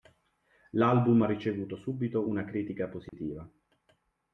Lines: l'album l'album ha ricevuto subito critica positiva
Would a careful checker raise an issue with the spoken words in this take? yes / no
yes